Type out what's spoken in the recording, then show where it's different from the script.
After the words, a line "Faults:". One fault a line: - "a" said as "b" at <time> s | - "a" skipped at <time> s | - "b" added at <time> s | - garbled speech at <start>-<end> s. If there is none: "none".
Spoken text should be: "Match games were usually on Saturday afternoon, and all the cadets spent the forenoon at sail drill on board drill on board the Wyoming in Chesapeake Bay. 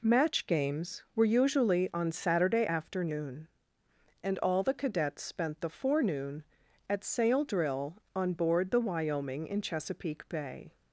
"Match games were usually on Saturday afternoon, and all the cadets spent the forenoon at sail drill on board the Wyoming in Chesapeake Bay.
Faults:
- "drill on board" skipped at 8.7 s